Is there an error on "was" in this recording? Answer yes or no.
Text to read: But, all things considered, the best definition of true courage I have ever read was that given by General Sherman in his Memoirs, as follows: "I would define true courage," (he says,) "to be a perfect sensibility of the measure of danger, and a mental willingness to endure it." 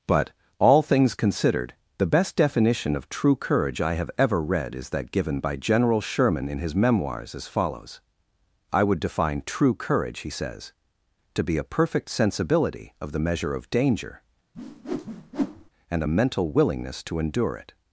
yes